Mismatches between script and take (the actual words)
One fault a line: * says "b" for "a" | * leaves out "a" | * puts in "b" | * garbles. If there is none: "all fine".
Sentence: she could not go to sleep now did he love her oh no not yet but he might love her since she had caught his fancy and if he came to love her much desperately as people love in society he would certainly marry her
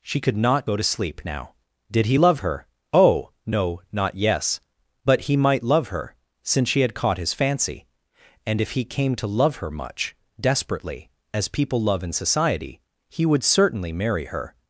* says "yes" for "yet"